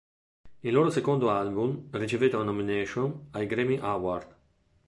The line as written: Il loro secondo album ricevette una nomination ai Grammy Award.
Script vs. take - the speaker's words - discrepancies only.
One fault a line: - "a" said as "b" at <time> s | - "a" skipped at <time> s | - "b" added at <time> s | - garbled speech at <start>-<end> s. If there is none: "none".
none